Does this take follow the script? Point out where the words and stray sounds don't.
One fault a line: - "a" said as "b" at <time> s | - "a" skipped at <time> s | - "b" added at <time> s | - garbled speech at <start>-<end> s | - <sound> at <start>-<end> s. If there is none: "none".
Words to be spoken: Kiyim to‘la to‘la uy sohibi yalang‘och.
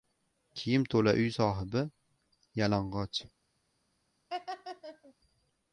- "to‘la" skipped at 1.1 s
- laugh at 4.3-5.1 s